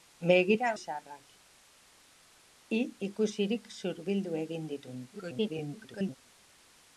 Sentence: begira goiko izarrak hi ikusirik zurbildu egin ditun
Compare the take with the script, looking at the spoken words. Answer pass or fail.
fail